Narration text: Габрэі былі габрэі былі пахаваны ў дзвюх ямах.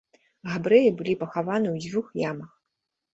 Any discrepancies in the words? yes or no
yes